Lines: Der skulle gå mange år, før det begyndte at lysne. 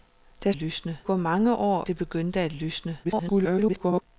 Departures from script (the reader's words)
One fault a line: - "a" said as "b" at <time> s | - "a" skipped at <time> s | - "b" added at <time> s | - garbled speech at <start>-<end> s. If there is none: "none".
- "skulle" said as "lysne" at 0.5 s
- "før" skipped at 1.9 s
- garbled speech at 3.0-4.0 s